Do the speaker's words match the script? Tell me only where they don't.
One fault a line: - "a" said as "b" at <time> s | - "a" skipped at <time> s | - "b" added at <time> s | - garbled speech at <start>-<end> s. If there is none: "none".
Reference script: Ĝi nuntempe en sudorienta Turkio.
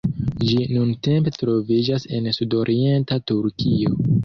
- "troviĝas" added at 1.4 s